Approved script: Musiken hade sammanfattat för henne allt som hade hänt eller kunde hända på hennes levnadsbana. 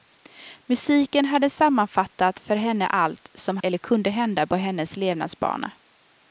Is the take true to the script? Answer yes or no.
no